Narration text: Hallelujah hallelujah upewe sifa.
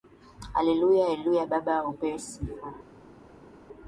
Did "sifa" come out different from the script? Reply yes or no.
no